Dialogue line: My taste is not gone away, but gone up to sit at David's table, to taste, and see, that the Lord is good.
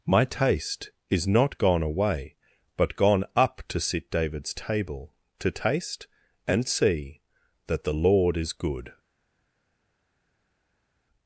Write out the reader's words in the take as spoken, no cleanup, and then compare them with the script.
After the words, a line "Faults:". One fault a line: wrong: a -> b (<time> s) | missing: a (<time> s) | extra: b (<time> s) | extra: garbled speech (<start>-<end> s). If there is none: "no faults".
My taste is not gone away, but gone up to sit David's table, to taste, and see, that the Lord is good.
Faults:
missing: at (4.1 s)